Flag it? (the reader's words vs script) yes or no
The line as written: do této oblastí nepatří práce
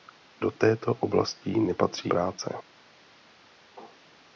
no